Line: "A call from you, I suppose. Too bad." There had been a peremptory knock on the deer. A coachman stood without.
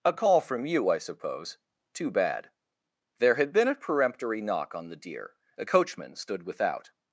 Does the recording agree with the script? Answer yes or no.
yes